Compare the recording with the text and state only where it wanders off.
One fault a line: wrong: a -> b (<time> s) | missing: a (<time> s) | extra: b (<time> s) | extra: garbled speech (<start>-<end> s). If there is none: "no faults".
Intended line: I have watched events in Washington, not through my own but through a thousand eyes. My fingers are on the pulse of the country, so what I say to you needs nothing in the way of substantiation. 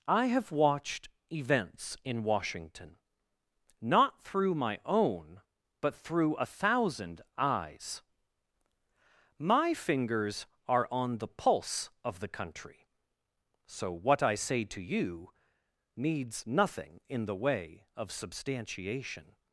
no faults